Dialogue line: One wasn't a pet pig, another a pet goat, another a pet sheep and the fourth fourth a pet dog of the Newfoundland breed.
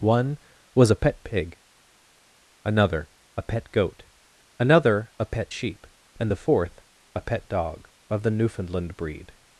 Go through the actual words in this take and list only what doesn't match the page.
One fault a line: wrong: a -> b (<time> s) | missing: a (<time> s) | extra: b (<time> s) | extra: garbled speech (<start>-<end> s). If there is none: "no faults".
wrong: wasn't -> was (0.7 s)
missing: fourth (6.8 s)